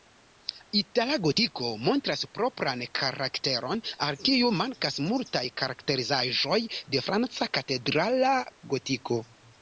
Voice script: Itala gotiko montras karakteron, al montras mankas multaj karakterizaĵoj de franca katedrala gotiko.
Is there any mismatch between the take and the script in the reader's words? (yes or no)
yes